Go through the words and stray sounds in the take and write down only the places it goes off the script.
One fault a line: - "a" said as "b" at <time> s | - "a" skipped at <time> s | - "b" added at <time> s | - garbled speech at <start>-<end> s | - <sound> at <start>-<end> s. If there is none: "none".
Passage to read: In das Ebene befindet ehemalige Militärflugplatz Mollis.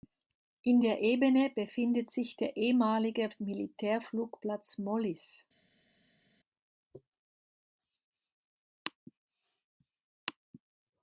- "das" said as "der" at 0.8 s
- "sich der" added at 2.1 s